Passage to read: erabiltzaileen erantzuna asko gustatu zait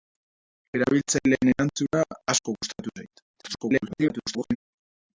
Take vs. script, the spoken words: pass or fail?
fail